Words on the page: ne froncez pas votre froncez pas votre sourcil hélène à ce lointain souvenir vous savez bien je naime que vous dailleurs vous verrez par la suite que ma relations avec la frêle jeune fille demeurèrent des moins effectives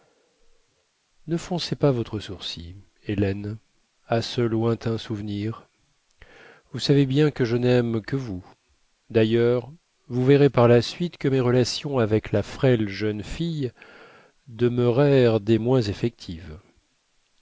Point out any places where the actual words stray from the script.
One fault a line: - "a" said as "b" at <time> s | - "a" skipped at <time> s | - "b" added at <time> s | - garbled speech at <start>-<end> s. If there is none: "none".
- "froncez pas votre" skipped at 2.2 s
- "que" added at 7.3 s
- "ma" said as "mes" at 11.3 s